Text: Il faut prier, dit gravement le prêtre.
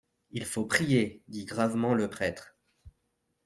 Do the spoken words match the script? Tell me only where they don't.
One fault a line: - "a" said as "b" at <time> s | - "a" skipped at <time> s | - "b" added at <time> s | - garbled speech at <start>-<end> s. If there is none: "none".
none